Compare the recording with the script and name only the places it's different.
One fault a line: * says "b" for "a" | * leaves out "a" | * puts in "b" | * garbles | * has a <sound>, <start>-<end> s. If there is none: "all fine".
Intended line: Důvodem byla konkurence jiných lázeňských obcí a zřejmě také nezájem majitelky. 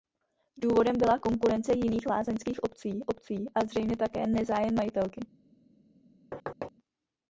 * puts in "obcí"
* has a thud, 6.3-6.7 s